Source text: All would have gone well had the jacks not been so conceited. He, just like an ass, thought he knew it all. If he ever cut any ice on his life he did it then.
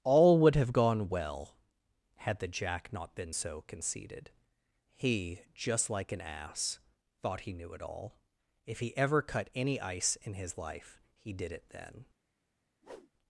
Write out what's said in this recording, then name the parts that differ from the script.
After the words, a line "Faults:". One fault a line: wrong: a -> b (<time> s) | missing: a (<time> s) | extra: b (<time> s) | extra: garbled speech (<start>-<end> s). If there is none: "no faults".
All would have gone well had the jack not been so conceited. He, just like an ass, thought he knew it all. If he ever cut any ice in his life he did it then.
Faults:
wrong: jacks -> jack (2.5 s)
wrong: on -> in (10.2 s)